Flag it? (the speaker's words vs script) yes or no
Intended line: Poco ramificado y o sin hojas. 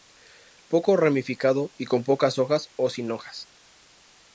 yes